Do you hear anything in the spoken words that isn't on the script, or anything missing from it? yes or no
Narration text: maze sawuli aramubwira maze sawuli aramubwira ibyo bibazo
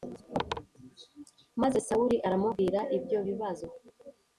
yes